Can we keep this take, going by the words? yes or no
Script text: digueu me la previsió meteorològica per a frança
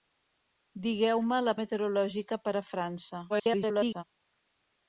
no